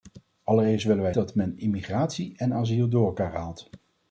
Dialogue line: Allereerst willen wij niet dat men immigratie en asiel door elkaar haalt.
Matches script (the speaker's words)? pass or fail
fail